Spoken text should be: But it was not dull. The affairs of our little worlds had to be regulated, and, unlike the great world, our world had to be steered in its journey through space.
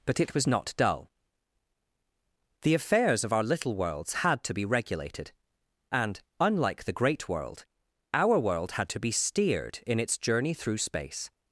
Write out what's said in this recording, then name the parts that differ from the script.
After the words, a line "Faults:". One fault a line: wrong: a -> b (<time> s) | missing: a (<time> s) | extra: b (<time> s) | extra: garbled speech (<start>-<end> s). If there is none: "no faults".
But it was not dull. The affairs of our little worlds had to be regulated, and, unlike the great world, our world had to be steered in its journey through space.
Faults:
no faults